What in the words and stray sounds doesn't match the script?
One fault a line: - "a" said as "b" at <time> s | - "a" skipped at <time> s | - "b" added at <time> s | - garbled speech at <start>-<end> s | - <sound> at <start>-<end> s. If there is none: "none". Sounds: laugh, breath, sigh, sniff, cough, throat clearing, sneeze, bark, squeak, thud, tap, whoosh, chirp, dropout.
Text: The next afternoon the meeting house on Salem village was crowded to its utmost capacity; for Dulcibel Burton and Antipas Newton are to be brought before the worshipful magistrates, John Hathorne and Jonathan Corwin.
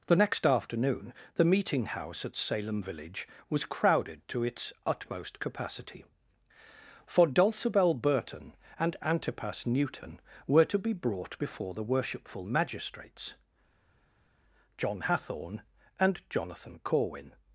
- "on" said as "at" at 2.2 s
- "are" said as "were" at 10.5 s